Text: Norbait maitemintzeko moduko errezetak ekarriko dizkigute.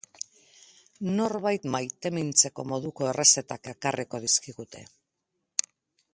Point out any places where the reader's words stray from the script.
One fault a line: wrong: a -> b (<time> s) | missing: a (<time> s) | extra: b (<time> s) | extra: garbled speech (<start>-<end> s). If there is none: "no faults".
no faults